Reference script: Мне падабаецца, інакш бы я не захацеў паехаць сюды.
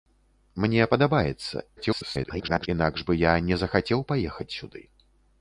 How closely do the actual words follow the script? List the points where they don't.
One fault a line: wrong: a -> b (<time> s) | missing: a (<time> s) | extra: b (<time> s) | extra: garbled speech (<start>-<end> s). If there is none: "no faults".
extra: garbled speech (1.8-2.7 s)